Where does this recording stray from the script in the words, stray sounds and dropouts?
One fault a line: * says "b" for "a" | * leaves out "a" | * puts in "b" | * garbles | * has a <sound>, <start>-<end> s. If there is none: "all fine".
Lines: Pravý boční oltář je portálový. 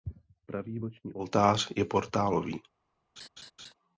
* has a laugh, 3.2-3.7 s